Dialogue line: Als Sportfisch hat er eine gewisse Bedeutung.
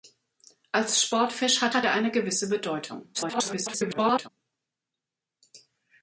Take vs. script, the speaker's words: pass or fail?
fail